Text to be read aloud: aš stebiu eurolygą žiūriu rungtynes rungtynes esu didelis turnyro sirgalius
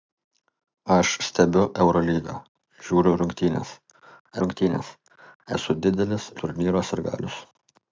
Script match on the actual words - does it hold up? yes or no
yes